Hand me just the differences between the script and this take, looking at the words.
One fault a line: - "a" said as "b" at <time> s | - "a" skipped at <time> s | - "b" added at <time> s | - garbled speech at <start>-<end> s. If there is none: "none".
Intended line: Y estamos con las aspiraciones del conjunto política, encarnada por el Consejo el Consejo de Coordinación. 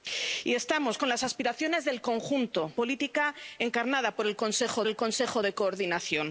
none